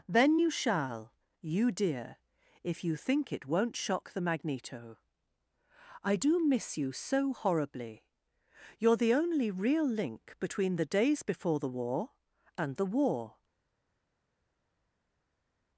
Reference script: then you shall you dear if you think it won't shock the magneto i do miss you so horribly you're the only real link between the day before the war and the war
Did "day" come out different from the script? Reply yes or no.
yes